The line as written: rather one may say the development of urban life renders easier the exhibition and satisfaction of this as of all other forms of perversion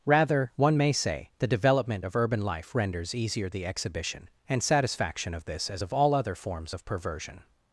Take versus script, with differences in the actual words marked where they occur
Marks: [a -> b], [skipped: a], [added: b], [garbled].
rather one may say the development of urban life renders easier the exhibition and satisfaction of this as of all other forms of perversion